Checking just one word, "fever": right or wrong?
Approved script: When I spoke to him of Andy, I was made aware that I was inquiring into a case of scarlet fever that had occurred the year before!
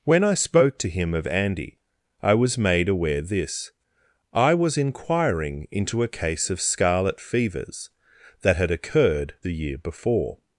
wrong